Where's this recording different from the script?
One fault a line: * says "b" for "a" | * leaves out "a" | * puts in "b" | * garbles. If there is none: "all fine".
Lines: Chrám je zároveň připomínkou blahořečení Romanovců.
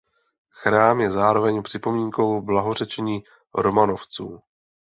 all fine